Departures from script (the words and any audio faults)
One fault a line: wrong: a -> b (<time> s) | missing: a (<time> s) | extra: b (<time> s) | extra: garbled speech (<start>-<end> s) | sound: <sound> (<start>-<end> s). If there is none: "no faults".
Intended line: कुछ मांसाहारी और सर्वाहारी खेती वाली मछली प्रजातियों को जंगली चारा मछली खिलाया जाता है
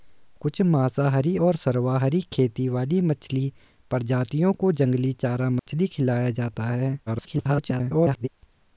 sound: dropout (5.6-5.7 s)
extra: garbled speech (7.1-8.3 s)